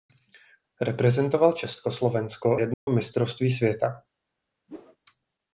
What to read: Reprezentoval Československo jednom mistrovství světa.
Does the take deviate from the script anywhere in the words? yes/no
no